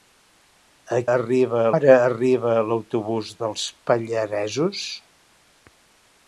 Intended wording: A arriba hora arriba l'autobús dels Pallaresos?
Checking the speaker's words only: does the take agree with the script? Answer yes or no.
yes